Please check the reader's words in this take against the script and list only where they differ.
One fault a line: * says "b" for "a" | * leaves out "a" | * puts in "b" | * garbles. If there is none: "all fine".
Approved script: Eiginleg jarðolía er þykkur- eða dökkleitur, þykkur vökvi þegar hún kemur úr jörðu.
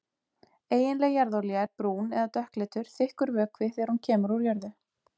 * says "brún" for "þykkur"